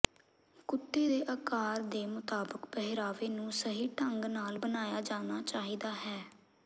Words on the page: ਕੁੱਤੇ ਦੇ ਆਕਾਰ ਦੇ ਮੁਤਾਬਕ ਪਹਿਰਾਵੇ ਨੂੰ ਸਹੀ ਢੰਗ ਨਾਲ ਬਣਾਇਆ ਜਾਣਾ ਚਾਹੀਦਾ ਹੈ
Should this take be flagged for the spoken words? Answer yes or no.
no